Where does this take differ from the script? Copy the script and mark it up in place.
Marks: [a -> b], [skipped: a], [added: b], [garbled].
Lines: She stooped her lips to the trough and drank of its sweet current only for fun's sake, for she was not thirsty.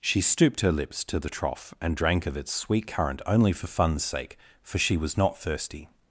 She stooped her lips to the trough and drank of its sweet current only for fun's sake, for she was not thirsty.